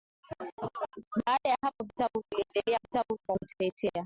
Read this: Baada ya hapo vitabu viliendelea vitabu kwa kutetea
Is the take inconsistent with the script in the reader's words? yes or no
no